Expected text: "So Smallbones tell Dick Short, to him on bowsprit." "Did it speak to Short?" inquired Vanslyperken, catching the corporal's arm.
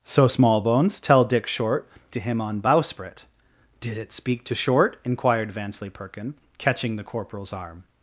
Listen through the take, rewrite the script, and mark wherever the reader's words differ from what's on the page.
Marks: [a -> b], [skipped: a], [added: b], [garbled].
"So Smallbones tell Dick Short, to him on bowsprit." "Did it speak to Short?" inquired Vanslyperken, catching the corporal's arm.